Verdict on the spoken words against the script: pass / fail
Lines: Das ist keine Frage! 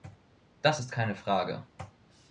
pass